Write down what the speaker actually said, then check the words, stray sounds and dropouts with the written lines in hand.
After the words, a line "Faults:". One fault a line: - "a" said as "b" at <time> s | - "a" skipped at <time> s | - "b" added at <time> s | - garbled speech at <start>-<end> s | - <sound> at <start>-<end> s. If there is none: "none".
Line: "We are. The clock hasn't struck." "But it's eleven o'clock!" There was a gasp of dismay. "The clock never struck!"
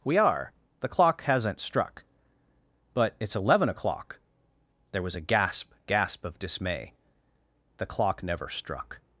"We are. The clock hasn't struck." "But it's eleven o'clock!" There was a gasp gasp of dismay. "The clock never struck!"
Faults:
- "gasp" added at 5.8 s